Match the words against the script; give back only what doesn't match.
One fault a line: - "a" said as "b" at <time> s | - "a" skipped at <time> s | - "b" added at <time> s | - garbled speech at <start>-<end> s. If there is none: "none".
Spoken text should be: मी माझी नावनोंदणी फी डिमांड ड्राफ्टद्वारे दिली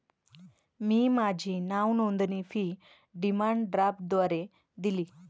none